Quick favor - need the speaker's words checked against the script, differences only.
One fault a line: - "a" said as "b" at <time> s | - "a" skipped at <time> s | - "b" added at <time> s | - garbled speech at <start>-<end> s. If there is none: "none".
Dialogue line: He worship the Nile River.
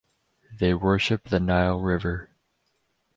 - "He" said as "They" at 0.5 s